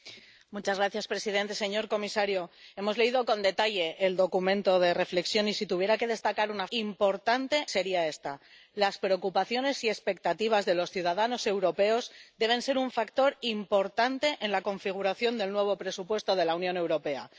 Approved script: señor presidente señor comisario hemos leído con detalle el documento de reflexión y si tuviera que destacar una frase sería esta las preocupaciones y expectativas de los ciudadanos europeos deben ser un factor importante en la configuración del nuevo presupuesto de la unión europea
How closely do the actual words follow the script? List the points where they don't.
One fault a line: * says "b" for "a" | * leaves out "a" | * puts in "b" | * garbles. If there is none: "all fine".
* says "importante" for "frase"